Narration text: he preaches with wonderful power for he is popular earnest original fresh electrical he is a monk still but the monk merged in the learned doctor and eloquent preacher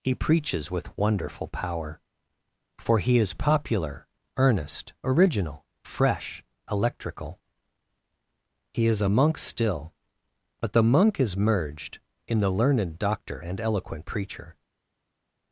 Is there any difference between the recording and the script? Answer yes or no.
yes